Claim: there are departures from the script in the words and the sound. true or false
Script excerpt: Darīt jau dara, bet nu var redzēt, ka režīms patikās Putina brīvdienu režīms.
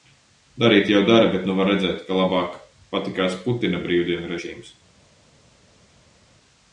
true